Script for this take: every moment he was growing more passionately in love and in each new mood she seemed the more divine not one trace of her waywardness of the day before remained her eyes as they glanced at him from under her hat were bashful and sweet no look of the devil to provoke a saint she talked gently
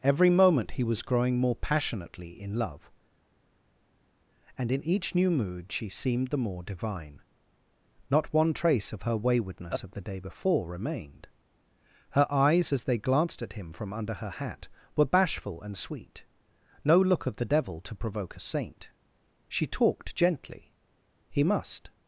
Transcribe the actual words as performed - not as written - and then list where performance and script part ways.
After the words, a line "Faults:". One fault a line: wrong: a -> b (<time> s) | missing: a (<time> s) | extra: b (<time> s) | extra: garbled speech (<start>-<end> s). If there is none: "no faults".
every moment he was growing more passionately in love and in each new mood she seemed the more divine not one trace of her waywardness of the day before remained her eyes as they glanced at him from under her hat were bashful and sweet no look of the devil to provoke a saint she talked gently he must
Faults:
extra: he must (21.3 s)